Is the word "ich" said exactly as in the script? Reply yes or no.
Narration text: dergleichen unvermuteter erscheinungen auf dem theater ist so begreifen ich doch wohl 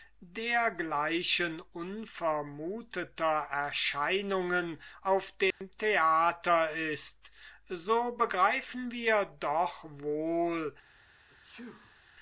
no